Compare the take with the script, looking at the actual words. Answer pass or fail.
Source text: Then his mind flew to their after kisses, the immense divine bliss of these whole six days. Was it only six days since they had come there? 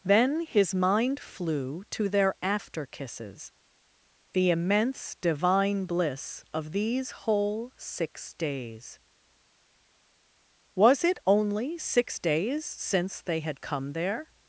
pass